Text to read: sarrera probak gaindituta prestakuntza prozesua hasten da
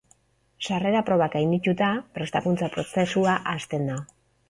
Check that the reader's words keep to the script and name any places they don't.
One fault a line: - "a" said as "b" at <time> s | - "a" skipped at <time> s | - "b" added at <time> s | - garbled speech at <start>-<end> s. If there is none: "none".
none